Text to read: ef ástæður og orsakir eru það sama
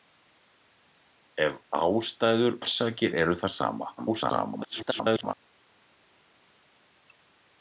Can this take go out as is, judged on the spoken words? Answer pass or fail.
fail